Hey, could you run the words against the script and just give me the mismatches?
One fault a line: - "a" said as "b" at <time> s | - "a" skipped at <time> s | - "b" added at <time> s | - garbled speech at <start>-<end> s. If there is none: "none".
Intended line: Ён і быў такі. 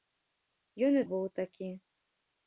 none